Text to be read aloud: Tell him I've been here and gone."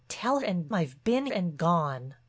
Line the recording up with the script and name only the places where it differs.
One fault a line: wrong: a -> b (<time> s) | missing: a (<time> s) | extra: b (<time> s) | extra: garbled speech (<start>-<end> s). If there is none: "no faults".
wrong: him -> and (0.4 s)
missing: here (1.3 s)